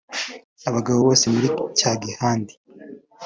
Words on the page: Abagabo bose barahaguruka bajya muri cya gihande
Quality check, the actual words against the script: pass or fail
fail